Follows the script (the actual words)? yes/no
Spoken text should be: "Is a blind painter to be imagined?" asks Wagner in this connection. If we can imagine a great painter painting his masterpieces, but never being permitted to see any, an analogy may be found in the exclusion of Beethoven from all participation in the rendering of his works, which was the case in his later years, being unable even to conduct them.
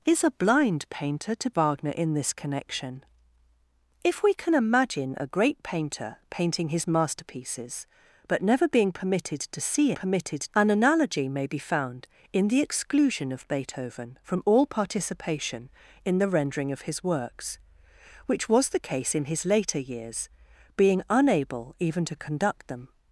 no